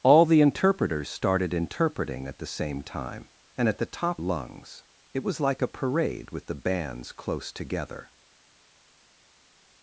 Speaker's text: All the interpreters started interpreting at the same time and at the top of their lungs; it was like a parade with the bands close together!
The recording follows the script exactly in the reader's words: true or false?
false